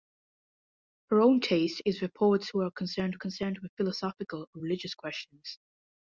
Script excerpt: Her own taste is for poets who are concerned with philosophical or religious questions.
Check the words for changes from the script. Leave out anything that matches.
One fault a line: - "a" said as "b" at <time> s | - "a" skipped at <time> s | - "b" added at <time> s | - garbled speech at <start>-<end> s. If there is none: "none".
- "concerned" added at 3.2 s